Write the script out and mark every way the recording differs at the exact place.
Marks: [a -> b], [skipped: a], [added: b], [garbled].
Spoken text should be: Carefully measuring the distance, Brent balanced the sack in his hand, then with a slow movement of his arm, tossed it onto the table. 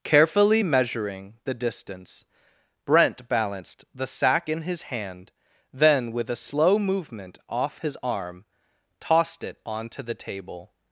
Carefully measuring the distance, Brent balanced the sack in his hand, then with a slow movement [of -> off] his arm, tossed it onto the table.